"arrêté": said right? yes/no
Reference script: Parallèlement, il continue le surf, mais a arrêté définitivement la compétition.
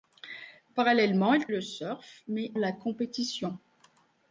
no